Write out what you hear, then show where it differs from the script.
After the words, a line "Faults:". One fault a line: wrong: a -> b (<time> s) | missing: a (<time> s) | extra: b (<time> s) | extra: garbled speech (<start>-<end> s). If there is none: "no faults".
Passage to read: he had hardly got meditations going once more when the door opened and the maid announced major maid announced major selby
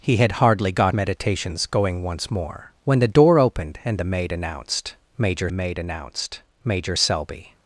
he had hardly got meditations going once more when the door opened and the maid announced major maid announced major selby
Faults:
no faults